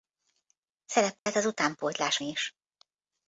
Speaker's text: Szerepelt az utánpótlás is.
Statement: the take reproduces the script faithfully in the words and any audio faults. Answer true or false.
false